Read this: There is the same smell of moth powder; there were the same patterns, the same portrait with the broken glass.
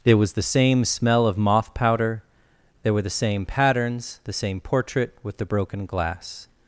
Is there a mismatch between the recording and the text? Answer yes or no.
yes